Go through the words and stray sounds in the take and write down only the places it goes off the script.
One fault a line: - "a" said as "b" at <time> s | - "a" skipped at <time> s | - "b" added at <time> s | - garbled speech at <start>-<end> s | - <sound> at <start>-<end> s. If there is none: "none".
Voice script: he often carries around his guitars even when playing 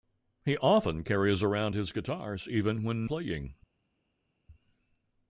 none